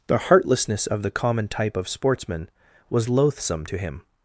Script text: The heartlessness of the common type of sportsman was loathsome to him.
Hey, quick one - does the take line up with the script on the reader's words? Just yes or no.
yes